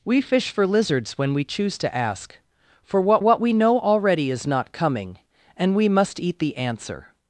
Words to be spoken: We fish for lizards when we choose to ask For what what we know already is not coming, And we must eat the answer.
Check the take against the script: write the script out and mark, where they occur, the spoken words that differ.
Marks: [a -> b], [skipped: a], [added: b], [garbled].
We fish for lizards when we choose to ask For what what we know already is not coming, And we must eat the answer.